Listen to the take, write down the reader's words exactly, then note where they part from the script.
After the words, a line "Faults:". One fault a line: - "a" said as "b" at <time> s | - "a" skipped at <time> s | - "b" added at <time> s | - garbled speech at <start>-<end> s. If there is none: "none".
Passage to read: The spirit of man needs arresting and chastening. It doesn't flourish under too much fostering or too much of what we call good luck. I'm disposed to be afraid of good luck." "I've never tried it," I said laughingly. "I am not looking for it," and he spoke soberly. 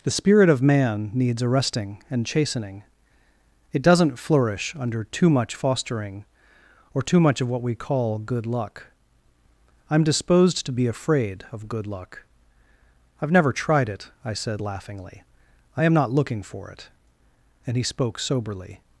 The spirit of man needs arresting and chastening. It doesn't flourish under too much fostering or too much of what we call good luck. I'm disposed to be afraid of good luck." "I've never tried it," I said laughingly. "I am not looking for it," and he spoke soberly.
Faults:
none